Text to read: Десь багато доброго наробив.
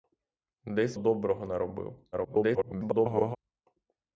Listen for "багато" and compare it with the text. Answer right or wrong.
wrong